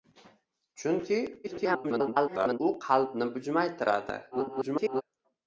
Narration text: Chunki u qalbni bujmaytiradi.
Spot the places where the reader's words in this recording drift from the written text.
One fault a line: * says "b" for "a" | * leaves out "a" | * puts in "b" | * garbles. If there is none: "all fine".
* garbles
* garbles